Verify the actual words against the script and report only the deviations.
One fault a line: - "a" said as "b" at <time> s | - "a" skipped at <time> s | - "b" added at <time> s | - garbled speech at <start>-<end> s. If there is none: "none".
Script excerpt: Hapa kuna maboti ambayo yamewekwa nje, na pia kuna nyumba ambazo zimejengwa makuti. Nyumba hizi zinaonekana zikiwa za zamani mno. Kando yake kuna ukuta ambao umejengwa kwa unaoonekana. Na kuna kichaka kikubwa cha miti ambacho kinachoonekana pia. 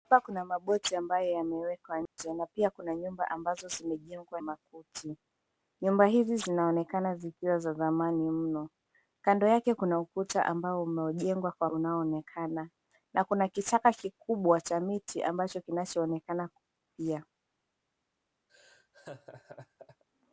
none